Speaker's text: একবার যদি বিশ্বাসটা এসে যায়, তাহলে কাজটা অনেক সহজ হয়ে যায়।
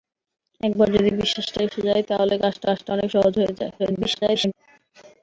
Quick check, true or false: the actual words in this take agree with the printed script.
false